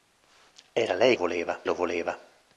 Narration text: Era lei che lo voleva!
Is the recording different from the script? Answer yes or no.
yes